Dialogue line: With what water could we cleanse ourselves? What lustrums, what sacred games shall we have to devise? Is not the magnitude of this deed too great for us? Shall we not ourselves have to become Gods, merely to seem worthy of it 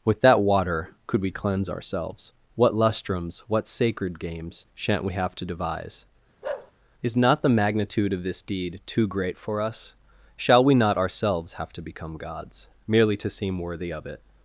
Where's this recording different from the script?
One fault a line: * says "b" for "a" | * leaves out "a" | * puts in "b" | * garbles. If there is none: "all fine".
* says "that" for "what"
* says "shan't" for "shall"